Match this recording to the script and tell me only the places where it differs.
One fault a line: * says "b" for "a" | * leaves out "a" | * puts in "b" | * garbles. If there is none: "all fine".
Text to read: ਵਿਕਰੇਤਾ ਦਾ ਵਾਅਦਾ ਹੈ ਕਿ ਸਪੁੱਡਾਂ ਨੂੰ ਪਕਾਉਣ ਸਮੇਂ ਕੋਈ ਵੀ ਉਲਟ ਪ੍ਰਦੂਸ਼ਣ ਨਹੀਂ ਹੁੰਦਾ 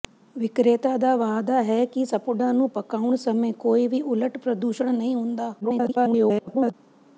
* garbles